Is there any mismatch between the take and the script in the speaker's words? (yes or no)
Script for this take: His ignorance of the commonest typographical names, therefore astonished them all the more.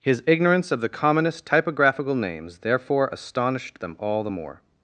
no